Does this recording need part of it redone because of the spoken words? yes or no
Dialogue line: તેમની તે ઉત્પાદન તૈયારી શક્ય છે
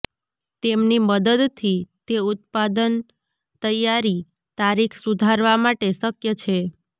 yes